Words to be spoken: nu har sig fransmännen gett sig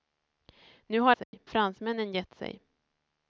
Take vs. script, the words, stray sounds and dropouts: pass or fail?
fail